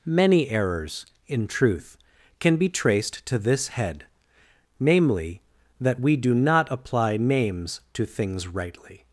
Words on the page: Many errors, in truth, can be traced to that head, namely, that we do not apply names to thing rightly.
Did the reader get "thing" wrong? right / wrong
wrong